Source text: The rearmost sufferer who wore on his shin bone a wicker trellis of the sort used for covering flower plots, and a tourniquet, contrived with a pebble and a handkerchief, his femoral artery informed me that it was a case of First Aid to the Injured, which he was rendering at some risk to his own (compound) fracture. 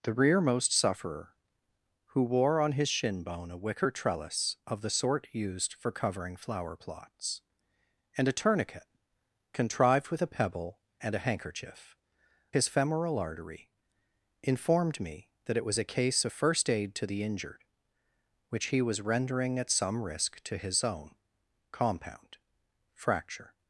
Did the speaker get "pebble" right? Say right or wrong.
right